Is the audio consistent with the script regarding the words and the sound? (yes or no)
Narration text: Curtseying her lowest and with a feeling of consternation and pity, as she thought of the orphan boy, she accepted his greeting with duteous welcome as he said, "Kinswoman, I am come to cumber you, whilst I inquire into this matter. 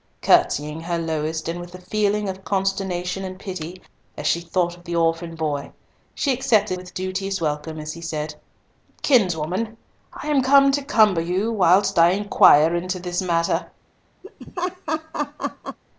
no